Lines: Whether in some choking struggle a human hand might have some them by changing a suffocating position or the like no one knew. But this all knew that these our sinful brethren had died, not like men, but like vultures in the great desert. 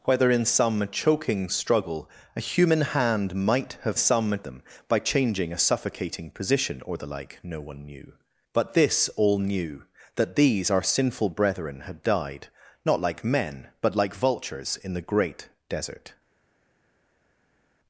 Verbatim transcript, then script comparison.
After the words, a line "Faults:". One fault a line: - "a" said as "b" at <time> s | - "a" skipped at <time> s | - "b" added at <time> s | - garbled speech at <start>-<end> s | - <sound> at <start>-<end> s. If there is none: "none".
Whether in some choking struggle a human hand might have some them by changing a suffocating position or the like no one knew. But this all knew that these our sinful brethren had died, not like men, but like vultures in the great desert.
Faults:
none